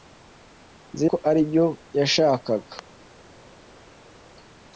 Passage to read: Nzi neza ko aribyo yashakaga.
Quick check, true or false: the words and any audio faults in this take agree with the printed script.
false